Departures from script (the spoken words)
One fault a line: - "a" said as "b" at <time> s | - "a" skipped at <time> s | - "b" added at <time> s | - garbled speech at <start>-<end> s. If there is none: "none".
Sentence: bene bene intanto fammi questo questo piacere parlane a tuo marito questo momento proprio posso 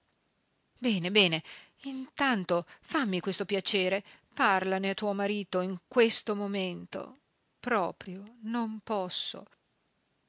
- "questo" skipped at 3.5 s
- "in" added at 5.6 s
- "non" added at 8.4 s